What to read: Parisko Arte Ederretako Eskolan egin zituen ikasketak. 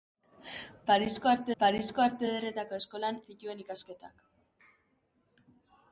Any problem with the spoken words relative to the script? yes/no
yes